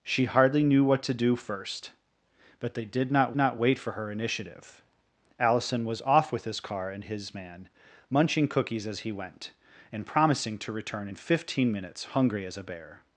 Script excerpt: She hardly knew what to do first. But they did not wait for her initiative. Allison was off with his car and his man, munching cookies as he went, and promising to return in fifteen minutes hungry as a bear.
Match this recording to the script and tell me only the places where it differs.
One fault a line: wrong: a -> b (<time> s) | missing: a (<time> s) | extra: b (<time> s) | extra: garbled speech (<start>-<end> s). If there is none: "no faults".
extra: not (3.4 s)